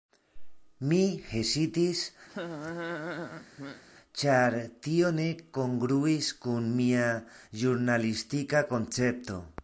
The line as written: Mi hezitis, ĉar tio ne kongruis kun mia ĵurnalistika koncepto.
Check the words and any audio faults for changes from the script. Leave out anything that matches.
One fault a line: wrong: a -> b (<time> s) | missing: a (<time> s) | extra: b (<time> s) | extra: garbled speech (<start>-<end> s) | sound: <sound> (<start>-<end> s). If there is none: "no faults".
sound: laugh (2.3-3.8 s)